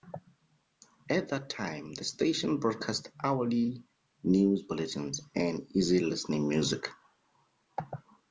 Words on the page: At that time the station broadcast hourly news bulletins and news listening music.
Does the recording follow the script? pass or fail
fail